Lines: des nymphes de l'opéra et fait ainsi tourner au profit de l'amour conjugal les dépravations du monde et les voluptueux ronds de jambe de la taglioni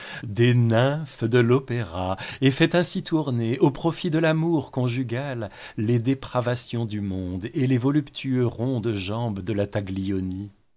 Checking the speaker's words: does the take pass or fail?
pass